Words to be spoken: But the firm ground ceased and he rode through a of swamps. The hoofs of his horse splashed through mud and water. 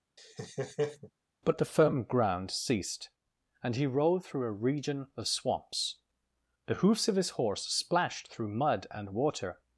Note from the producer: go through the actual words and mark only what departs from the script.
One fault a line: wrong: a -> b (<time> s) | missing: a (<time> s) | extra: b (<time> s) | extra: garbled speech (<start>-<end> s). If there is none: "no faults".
extra: region (4.5 s)